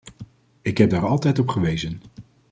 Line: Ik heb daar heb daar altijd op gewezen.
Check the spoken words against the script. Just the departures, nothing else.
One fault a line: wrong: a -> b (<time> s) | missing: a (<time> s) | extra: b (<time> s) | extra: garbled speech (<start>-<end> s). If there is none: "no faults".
missing: heb daar (1.1 s)